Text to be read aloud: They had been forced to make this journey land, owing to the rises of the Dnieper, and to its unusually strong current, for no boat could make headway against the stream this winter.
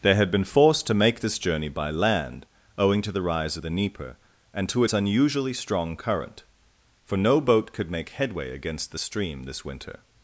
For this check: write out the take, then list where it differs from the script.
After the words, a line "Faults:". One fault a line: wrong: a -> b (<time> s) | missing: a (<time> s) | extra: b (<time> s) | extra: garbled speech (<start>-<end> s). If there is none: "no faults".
They had been forced to make this journey by land, owing to the rise of the Dnieper, and to its unusually strong current, for no boat could make headway against the stream this winter.
Faults:
extra: by (1.7 s)
wrong: rises -> rise (3.2 s)